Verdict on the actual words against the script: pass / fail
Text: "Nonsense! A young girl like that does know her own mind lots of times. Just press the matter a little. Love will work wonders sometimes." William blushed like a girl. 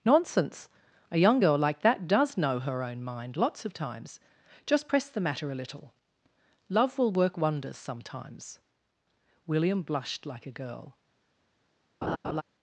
pass